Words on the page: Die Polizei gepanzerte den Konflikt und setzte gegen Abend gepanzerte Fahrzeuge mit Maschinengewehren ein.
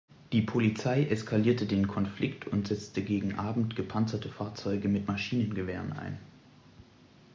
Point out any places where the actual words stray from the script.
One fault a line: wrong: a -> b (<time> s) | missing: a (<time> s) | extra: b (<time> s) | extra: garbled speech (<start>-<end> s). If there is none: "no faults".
wrong: gepanzerte -> eskalierte (1.0 s)